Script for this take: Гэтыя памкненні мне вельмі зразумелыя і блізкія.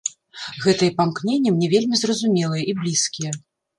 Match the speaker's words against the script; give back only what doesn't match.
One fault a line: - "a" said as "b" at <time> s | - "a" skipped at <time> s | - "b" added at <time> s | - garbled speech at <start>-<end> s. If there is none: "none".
none